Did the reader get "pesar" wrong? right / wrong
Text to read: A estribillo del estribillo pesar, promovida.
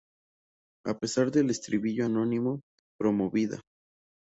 wrong